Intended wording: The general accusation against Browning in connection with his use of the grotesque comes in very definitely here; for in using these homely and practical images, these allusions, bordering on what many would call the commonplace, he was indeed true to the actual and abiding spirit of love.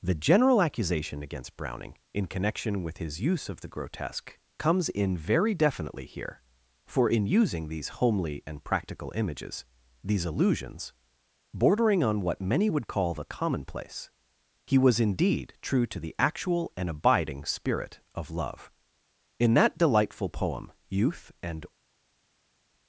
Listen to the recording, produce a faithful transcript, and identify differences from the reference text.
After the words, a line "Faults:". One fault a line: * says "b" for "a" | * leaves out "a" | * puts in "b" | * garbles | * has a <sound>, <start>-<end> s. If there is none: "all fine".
The general accusation against Browning in connection with his use of the grotesque comes in very definitely here; for in using these homely and practical images, these allusions, bordering on what many would call the commonplace, he was indeed true to the actual and abiding spirit of love. In that delightful poem "Youth and
Faults:
* puts in "In that delightful poem Youth and"